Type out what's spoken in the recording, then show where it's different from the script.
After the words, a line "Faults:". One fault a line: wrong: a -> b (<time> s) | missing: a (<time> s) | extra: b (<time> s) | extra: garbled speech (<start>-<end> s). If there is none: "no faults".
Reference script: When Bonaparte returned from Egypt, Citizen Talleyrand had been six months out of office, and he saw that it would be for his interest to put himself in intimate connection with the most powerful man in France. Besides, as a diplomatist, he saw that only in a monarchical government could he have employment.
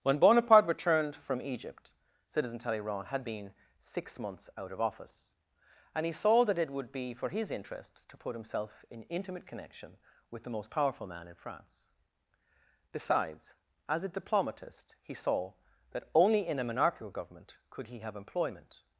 When Bonaparte returned from Egypt, Citizen Talleyrand had been six months out of office, and he saw that it would be for his interest to put himself in intimate connection with the most powerful man in France. Besides, as a diplomatist, he saw that only in a monarchical government could he have employment.
Faults:
no faults